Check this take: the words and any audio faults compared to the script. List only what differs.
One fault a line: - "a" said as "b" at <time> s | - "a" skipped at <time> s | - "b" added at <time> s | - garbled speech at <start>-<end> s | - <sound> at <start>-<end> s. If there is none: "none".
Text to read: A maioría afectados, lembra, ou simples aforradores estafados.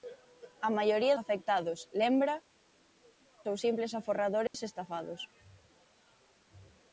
- dropout at 4.5-4.5 s